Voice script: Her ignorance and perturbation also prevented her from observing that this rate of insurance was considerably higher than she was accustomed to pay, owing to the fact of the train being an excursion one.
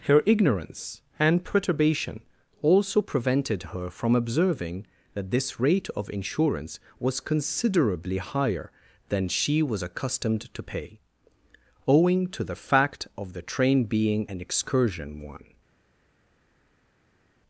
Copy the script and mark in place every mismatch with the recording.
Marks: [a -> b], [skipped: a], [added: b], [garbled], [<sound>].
Her ignorance and perturbation also prevented her from observing that this rate of insurance was considerably higher than she was accustomed to pay, owing to the fact of the train being an excursion one.